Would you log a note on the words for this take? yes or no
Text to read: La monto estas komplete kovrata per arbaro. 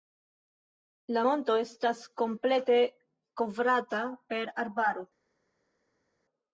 no